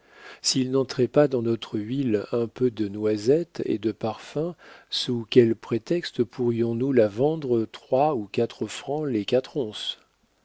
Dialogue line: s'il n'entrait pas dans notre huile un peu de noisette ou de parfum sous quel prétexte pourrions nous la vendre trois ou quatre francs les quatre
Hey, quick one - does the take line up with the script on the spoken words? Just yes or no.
no